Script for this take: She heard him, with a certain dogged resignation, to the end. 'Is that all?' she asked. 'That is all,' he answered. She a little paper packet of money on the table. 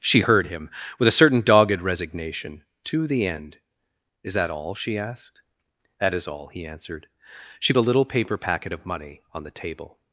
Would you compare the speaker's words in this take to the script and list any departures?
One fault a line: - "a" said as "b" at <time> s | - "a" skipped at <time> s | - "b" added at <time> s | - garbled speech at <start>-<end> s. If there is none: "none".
none